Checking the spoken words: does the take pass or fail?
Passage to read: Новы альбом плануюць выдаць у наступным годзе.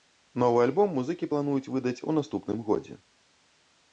fail